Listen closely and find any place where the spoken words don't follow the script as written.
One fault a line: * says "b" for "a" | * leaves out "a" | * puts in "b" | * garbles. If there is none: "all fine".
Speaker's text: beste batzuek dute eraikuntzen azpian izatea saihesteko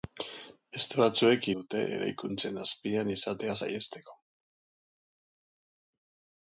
all fine